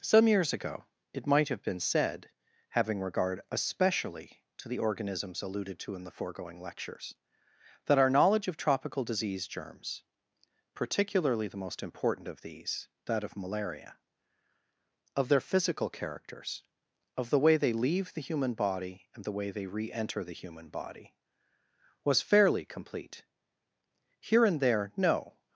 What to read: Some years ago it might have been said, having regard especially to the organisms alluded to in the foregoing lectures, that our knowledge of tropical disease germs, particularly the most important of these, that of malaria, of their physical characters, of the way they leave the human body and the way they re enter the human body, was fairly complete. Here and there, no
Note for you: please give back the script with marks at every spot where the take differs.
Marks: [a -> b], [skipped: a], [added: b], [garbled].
Some years ago it might have been said, having regard especially to the organisms alluded to in the foregoing lectures, that our knowledge of tropical disease germs, particularly the most important of these, that of malaria, of their physical characters, of the way they leave the human body and the way they re enter the human body, was fairly complete. Here and there, no